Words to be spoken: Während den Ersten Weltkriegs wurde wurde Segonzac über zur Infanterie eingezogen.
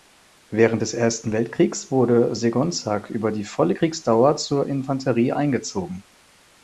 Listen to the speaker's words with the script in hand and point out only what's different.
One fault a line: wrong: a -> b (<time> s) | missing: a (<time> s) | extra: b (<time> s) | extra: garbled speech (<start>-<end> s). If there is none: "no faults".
wrong: den -> des (0.8 s)
missing: wurde (2.4 s)
extra: die volle Kriegsdauer (3.3 s)